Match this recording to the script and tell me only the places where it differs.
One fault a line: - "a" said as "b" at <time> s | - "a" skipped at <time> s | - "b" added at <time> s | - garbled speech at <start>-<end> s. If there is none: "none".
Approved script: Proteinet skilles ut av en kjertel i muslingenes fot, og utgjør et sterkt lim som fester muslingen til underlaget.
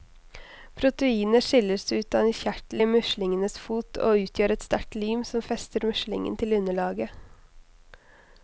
none